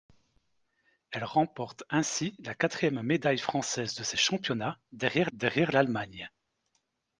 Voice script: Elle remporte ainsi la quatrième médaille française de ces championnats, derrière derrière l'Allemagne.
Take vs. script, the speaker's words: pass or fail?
pass